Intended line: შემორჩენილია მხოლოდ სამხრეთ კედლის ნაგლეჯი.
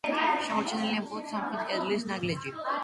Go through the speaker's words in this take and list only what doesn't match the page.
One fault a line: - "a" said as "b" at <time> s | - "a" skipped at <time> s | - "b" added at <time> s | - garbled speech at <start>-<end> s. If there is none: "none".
none